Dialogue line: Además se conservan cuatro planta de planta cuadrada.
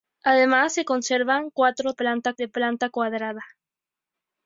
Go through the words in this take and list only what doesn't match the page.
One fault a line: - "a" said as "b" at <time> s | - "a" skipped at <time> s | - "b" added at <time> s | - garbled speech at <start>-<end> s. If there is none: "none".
none